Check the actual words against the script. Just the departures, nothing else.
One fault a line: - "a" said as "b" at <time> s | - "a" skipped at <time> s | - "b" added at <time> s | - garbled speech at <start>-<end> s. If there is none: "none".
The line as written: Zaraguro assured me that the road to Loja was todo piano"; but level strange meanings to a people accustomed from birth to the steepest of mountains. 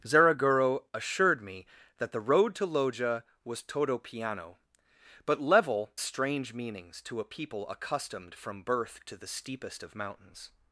none